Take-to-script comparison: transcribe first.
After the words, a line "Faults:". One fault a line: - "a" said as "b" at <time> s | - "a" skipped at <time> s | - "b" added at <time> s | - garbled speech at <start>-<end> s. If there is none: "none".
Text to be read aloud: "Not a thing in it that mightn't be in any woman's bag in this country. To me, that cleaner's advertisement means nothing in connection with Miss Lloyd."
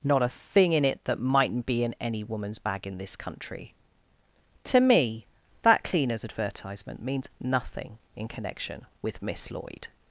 "Not a thing in it that mightn't be in any woman's bag in this country. To me, that cleaner's advertisement means nothing in connection with Miss Lloyd."
Faults:
none